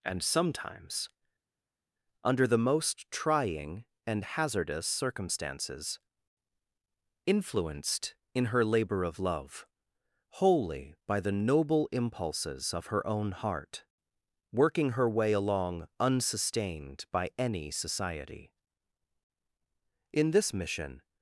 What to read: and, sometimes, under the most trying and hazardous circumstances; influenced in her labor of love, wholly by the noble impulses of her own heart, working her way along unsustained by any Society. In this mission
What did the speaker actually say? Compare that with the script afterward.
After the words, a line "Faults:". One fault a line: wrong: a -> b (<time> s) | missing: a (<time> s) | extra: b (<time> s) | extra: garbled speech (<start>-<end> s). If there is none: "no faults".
and, sometimes, under the most trying and hazardous circumstances; influenced in her labor of love, wholly by the noble impulses of her own heart, working her way along unsustained by any Society. In this mission
Faults:
no faults